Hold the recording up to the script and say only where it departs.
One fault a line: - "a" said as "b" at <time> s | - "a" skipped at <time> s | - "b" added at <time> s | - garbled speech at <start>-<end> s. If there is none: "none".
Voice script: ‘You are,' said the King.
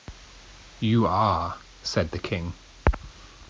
none